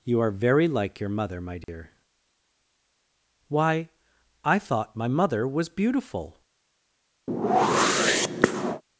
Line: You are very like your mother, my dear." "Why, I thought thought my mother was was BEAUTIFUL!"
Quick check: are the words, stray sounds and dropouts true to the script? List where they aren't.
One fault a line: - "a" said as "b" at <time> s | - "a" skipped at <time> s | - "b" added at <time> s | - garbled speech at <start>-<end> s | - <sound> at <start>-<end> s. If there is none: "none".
- dropout at 1.6-1.7 s
- "thought" skipped at 4.9 s
- "was" skipped at 5.7 s
- whoosh at 7.3-8.8 s